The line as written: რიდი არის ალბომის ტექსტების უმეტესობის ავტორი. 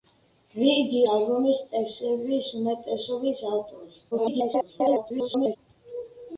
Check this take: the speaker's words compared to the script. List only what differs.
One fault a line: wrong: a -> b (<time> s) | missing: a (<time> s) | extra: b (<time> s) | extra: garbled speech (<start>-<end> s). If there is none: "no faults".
missing: არის (1.0 s)
extra: garbled speech (4.1-5.6 s)